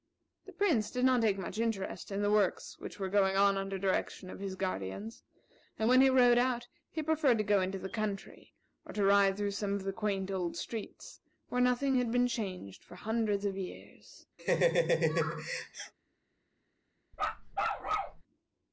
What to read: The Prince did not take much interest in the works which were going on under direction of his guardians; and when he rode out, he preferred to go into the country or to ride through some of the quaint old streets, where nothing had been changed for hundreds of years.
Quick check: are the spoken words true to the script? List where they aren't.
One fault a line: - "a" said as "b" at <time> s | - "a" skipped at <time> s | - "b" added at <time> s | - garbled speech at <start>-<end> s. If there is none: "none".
none